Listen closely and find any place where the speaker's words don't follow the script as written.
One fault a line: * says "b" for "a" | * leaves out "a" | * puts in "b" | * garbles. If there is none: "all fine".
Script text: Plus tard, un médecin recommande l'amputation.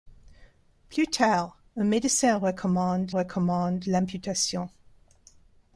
* puts in "recommande"